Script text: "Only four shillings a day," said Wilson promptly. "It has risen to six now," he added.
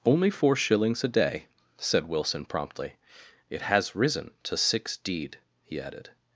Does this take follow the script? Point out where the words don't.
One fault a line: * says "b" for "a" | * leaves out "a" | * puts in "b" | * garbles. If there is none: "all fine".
* says "deed" for "now"